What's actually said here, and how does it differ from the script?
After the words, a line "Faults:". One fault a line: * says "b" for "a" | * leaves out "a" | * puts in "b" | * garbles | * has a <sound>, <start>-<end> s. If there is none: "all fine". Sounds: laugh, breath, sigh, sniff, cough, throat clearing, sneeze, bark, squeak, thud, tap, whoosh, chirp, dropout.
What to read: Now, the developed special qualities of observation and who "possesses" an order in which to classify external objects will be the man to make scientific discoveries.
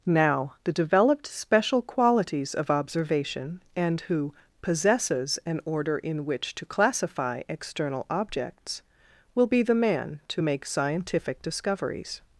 Now, the developed special qualities of observation and who "possesses" an order in which to classify external objects will be the man to make scientific discoveries.
Faults:
all fine